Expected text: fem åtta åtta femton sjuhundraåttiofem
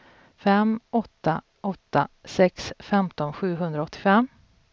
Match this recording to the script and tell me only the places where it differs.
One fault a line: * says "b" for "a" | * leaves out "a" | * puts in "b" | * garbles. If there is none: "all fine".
* puts in "sex"